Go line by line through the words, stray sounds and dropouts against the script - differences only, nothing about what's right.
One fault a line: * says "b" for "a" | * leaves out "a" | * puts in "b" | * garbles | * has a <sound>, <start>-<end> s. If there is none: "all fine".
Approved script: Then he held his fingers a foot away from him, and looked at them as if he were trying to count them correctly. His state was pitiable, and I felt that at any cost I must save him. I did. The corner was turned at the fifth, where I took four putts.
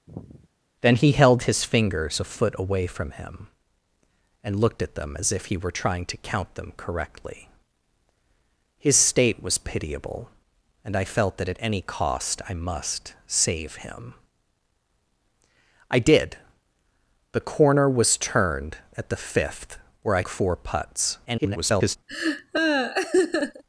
* has a sigh, 0.1-0.5 s
* leaves out "took"
* garbles
* has a laugh, 22.1-23.6 s